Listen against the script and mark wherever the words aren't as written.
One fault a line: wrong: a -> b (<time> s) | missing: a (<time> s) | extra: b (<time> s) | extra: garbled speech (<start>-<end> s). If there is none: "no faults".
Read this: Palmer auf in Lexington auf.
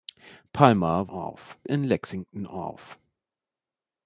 no faults